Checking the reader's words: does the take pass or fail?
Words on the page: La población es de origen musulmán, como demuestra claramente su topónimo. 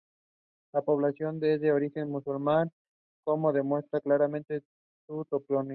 pass